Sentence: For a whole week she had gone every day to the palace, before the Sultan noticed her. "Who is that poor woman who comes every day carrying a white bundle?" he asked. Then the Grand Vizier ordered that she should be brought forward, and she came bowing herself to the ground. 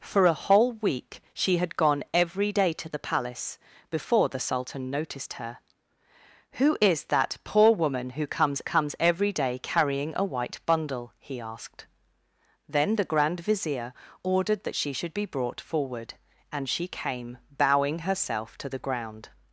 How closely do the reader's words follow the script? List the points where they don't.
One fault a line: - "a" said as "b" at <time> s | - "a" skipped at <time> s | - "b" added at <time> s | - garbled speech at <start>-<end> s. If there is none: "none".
- "comes" added at 8.6 s